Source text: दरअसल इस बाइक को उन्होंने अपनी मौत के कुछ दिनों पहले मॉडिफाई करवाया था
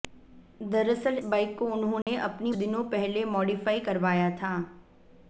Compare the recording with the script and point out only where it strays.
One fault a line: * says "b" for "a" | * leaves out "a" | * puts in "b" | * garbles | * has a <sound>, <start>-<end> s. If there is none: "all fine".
* leaves out "इस"
* has a dropout, 2.0-2.1 s
* leaves out "मौत के कुछ"